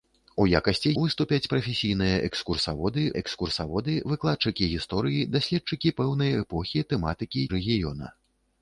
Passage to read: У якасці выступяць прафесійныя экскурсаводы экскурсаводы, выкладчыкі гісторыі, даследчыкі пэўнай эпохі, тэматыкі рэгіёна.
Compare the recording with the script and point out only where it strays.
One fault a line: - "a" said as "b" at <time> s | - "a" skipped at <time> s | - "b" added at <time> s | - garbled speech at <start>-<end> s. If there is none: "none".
none